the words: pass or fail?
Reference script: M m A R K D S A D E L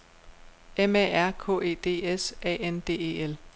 fail